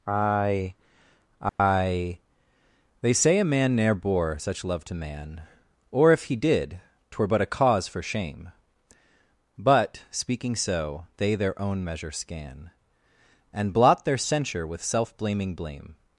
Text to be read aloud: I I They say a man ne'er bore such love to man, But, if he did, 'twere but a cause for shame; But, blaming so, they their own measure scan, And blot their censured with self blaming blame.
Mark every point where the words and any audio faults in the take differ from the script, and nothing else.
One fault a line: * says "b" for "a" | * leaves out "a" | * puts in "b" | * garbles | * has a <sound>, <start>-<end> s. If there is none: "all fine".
* has a dropout, 1.5-1.6 s
* says "Or" for "But"
* says "speaking" for "blaming"
* says "censure" for "censured"